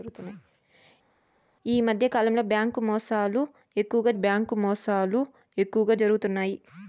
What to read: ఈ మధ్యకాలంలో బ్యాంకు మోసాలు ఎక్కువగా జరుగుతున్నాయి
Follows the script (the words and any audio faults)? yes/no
no